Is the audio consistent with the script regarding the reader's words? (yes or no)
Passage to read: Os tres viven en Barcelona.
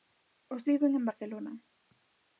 no